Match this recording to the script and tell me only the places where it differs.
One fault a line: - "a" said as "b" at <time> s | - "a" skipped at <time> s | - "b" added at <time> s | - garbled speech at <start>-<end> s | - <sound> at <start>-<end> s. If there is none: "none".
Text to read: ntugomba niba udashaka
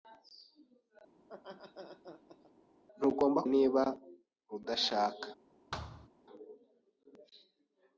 - laugh at 1.2-2.5 s
- thud at 5.7-6.1 s